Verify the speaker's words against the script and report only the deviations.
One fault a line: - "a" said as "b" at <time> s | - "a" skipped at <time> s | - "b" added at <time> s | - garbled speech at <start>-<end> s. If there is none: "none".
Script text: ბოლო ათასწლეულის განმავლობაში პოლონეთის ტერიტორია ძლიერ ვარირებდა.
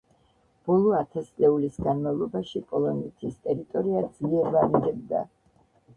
none